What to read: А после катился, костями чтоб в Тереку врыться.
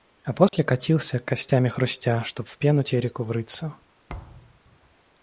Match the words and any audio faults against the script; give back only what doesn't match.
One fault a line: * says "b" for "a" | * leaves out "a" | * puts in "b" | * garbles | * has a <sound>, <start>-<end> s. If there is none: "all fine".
* has a dropout, 0.5-0.5 s
* puts in "хрустя"
* puts in "пену"
* has a thud, 4.1-4.6 s